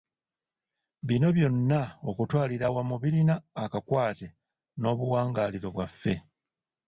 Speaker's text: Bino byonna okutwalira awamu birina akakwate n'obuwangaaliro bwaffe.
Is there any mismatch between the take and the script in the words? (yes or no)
no